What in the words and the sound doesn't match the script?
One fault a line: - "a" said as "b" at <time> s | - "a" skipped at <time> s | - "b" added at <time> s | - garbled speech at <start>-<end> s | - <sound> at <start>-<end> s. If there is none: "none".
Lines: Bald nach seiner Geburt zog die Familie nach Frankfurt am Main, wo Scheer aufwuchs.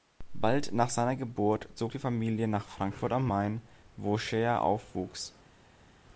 none